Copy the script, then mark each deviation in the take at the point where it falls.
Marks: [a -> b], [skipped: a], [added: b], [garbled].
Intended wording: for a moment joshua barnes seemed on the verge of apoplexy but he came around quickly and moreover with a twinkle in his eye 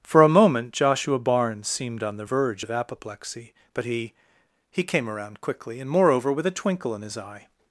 for a moment joshua barnes seemed on the verge of apoplexy but he [added: he] came around quickly and moreover with a twinkle in his eye